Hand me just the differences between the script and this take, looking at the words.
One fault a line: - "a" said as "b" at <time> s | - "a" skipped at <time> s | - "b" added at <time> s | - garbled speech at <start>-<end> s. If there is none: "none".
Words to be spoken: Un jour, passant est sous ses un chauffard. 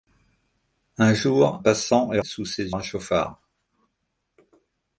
none